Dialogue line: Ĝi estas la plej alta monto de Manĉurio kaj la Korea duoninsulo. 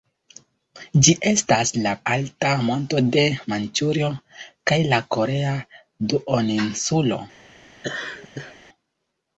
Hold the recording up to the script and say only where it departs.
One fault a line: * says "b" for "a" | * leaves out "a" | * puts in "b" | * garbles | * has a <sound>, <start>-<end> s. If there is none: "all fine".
* leaves out "plej"
* has a laugh, 7.8-8.6 s